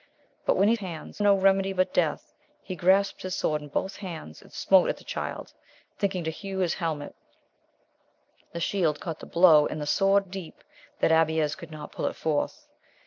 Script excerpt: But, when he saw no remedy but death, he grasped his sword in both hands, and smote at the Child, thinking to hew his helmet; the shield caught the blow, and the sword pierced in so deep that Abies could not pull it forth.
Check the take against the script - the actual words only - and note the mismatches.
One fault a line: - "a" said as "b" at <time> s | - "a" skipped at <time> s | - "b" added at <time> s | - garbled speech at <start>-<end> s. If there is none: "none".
- "saw" said as "hands" at 0.8 s
- "pierced in so" skipped at 10.3 s